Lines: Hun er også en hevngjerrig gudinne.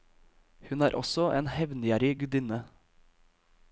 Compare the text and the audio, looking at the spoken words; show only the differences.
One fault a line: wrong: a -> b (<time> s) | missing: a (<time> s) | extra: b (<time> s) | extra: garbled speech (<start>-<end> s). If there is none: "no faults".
no faults